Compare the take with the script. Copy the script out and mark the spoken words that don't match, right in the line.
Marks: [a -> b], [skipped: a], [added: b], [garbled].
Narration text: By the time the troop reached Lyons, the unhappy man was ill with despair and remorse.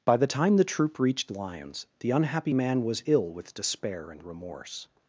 By the time the troop reached Lyons, the unhappy man was ill with despair and remorse.